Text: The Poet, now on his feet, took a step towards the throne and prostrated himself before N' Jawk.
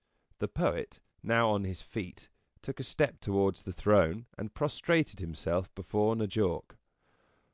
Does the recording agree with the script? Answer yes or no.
yes